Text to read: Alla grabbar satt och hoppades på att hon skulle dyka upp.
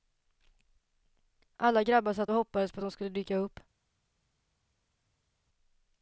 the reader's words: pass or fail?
pass